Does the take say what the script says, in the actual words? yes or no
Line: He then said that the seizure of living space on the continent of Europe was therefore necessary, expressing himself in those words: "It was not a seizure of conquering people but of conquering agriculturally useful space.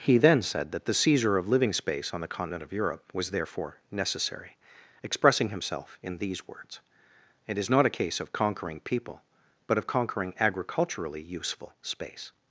no